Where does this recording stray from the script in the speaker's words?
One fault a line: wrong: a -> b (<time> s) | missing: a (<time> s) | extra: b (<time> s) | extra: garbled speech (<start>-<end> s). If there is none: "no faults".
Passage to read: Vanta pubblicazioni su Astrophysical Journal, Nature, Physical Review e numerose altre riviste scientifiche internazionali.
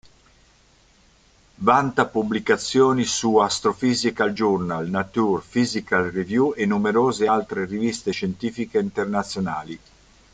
no faults